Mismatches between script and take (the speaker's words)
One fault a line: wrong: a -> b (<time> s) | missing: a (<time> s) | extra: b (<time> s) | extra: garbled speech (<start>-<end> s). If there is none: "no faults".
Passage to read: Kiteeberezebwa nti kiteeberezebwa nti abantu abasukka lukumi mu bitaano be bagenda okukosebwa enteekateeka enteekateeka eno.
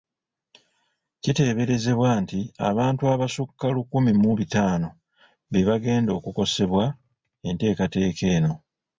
missing: kiteeberezebwa nti (2.4 s)
missing: enteekateeka (8.2 s)